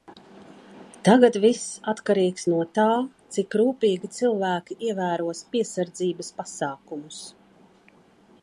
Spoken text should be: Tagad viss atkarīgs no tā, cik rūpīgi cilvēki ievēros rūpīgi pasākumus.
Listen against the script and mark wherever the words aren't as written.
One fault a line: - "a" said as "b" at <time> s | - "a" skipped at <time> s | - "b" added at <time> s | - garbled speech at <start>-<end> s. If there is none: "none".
- "rūpīgi" said as "piesardzības" at 5.6 s